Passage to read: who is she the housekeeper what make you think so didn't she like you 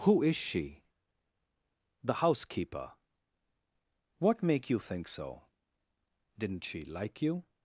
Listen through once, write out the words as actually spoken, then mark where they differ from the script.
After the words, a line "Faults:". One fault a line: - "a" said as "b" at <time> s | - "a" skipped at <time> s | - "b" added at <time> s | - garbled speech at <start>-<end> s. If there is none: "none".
who is she the housekeeper what make you think so didn't she like you
Faults:
none